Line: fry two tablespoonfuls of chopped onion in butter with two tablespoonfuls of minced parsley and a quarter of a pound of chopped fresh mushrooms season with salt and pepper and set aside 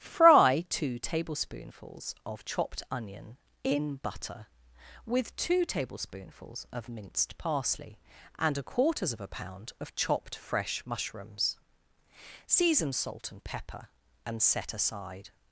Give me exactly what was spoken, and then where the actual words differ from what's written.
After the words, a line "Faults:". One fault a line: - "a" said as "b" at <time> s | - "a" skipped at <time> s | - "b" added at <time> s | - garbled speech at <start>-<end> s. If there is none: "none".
fry two tablespoonfuls of chopped onion in butter with two tablespoonfuls of minced parsley and a quarters of a pound of chopped fresh mushrooms season salt and pepper and set aside
Faults:
- "quarter" said as "quarters" at 8.6 s
- "with" skipped at 12.9 s